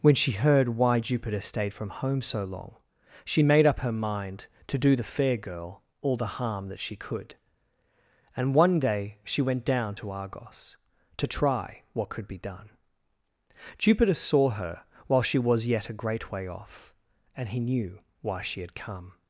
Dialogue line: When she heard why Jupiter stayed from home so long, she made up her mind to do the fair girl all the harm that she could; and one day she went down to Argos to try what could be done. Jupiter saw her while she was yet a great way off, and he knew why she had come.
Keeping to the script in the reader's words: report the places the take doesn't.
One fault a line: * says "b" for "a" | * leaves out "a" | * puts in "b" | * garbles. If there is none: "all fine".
all fine